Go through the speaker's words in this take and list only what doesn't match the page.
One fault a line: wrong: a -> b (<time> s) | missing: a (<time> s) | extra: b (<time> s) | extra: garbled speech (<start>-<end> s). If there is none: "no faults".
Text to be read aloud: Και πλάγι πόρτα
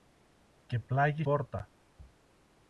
no faults